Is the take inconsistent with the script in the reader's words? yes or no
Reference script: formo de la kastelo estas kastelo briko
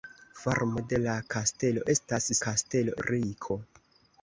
no